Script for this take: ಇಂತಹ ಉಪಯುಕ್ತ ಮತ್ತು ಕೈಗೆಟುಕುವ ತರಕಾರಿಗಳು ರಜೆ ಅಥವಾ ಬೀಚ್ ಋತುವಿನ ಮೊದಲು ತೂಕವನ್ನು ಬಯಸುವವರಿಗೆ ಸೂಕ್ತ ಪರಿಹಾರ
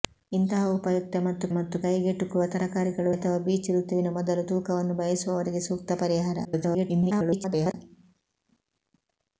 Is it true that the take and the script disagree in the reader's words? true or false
true